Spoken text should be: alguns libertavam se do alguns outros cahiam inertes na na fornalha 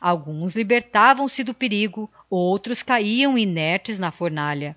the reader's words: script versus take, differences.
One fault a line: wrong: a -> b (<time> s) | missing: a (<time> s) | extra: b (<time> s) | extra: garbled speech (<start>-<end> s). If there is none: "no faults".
wrong: alguns -> perigo (1.5 s)
missing: na (4.1 s)